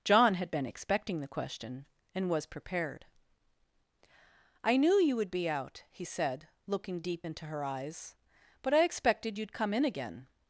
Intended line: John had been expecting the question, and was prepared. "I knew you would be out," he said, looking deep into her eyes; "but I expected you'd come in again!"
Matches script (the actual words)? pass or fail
pass